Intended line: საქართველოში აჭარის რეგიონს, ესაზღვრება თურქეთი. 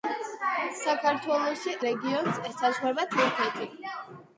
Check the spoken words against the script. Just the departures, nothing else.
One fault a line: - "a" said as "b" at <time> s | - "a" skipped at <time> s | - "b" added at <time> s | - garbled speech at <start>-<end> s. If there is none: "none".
- "აჭარის" skipped at 1.8 s